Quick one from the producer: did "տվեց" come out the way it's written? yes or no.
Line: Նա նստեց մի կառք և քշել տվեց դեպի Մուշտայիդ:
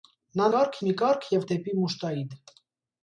no